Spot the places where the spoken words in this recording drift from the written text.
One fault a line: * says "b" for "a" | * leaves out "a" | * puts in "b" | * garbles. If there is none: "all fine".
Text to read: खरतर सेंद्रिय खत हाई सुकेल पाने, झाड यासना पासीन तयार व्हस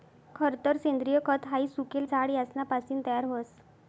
* leaves out "पाने"